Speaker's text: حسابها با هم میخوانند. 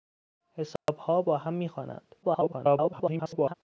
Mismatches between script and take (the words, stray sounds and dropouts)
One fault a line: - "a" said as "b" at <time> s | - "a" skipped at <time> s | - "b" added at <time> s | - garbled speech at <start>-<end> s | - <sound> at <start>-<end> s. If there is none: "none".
- dropout at 0.8-0.9 s
- garbled speech at 2.2-3.5 s